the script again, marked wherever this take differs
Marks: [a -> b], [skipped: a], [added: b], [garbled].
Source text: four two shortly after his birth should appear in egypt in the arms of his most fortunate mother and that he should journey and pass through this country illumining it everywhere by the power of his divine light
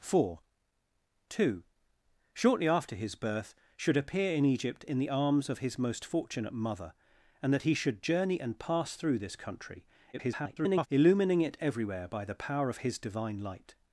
four two shortly after his birth should appear in egypt in the arms of his most fortunate mother and that he should journey and pass through this country [garbled] illumining it everywhere by the power of his divine light